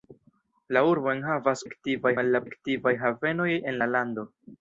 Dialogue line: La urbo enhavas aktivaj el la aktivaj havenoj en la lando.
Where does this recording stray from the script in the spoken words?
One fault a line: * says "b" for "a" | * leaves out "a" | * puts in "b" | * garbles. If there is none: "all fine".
all fine